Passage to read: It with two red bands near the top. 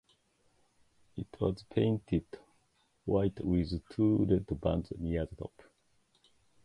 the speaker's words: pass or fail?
fail